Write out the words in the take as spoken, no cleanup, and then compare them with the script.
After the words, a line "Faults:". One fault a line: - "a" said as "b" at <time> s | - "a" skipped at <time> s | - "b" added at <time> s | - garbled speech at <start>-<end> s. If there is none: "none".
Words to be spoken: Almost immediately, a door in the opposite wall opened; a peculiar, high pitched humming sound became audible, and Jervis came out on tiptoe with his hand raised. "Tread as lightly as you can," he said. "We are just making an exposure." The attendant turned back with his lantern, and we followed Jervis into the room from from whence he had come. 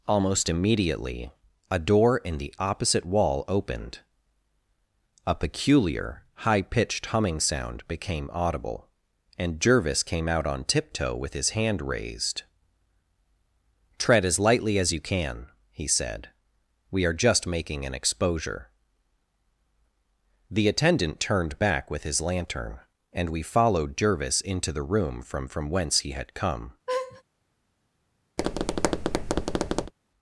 Almost immediately, a door in the opposite wall opened; a peculiar, high pitched humming sound became audible, and Jervis came out on tiptoe with his hand raised. "Tread as lightly as you can," he said. "We are just making an exposure." The attendant turned back with his lantern, and we followed Jervis into the room from from whence he had come.
Faults:
none